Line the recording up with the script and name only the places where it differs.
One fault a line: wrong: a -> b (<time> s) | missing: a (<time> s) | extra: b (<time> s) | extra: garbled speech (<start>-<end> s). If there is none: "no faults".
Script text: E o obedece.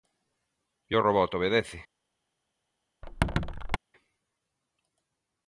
extra: robot (1.1 s)